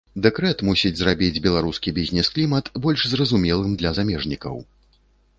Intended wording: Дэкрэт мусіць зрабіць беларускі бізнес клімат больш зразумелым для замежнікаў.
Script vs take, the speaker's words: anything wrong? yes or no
no